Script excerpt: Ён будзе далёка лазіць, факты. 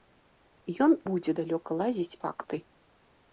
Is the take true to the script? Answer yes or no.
yes